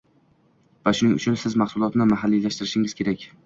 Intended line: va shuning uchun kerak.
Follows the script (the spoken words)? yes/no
no